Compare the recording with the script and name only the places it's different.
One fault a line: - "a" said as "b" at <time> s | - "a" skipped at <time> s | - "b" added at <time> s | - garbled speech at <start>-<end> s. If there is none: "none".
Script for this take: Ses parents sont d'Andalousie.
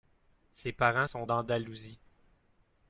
none